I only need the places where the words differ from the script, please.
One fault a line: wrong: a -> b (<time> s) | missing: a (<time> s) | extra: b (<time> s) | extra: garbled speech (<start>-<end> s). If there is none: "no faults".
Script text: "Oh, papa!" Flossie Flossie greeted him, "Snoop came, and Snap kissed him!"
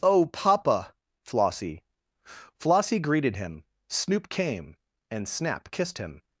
no faults